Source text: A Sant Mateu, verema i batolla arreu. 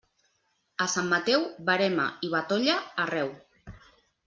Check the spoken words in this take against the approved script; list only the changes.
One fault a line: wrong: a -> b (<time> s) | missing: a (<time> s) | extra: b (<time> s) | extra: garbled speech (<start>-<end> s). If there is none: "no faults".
no faults